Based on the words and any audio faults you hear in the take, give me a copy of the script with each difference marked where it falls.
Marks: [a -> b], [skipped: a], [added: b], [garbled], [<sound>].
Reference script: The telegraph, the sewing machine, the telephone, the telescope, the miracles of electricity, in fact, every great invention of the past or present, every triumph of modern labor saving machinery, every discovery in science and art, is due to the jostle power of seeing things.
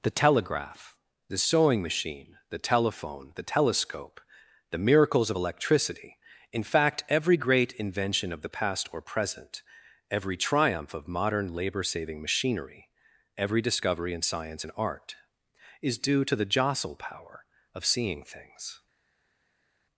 The telegraph, the sewing machine, the telephone, the telescope, the miracles of electricity, in fact, every great invention of the past or present, every triumph of modern labor saving machinery, every discovery in science and art, is due to the jostle power of seeing things.